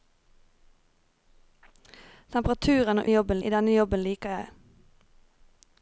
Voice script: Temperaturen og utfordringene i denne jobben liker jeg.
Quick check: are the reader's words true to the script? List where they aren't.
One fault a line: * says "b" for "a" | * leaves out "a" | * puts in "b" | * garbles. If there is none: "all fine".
* says "jobben" for "utfordringene"